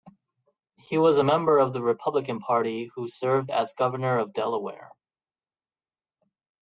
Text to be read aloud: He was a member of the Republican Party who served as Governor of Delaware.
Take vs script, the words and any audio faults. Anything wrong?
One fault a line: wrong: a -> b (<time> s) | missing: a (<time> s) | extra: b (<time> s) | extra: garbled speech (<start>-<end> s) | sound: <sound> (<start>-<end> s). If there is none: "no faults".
no faults